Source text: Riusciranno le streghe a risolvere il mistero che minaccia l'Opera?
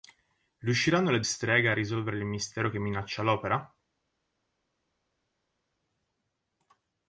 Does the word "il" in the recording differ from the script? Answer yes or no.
no